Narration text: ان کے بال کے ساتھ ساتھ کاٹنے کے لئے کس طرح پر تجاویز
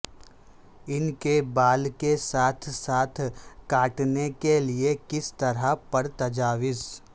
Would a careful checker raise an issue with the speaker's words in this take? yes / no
no